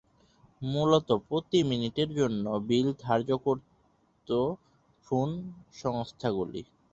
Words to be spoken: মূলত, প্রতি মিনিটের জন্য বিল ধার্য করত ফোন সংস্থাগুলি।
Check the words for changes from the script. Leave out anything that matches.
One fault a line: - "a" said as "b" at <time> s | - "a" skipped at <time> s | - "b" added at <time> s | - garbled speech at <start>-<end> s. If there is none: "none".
none